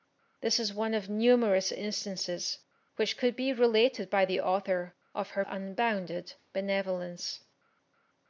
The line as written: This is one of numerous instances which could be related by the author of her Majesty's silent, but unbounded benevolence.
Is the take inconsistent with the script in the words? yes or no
yes